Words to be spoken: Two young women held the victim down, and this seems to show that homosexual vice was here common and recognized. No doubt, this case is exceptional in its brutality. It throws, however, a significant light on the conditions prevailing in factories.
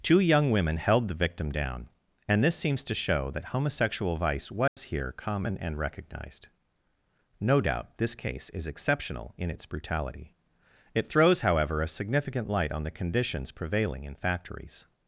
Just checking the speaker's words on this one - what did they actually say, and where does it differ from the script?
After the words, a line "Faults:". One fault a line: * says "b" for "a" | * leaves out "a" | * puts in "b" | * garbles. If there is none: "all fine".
Two young women held the victim down, and this seems to show that homosexual vice was here common and recognized. No doubt, this case is exceptional in its brutality. It throws, however, a significant light on the conditions prevailing in factories.
Faults:
all fine